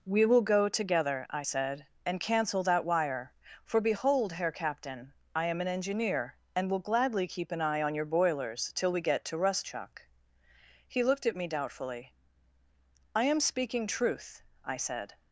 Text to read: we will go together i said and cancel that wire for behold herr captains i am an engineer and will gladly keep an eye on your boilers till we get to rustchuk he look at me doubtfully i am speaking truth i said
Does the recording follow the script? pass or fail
fail